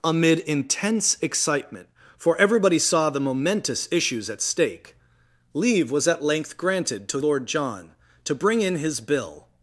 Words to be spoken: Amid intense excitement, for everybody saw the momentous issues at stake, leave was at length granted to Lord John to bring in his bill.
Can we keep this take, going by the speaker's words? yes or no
yes